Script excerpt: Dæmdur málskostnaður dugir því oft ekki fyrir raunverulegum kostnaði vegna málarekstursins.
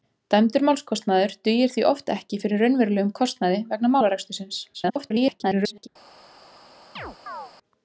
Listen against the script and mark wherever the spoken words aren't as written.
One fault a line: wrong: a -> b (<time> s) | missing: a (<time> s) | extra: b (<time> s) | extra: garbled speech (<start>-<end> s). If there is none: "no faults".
extra: garbled speech (4.7-5.9 s)